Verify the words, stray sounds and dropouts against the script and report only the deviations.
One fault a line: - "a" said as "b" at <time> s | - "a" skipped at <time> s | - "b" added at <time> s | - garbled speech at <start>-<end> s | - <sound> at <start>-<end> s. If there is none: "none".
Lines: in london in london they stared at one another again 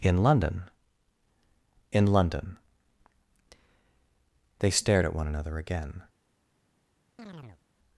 - chirp at 7.2-7.6 s